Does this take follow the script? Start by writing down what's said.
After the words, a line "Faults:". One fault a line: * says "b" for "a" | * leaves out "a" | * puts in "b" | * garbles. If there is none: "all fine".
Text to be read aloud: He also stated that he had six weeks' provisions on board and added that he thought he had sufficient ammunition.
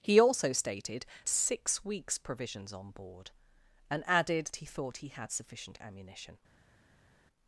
He also stated six weeks' provisions on board and added he thought he had sufficient ammunition.
Faults:
* leaves out "that he had"
* leaves out "that"